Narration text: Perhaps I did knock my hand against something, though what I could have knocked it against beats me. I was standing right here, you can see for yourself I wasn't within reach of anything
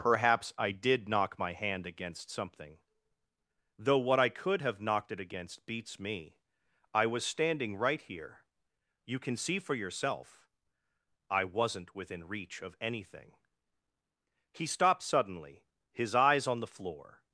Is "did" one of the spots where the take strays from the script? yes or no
no